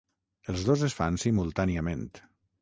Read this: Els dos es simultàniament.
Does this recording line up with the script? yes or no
no